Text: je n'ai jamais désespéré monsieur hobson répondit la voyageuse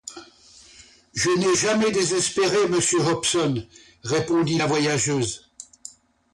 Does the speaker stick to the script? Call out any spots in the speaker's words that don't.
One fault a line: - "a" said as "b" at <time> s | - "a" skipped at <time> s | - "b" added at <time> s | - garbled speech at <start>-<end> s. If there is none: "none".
none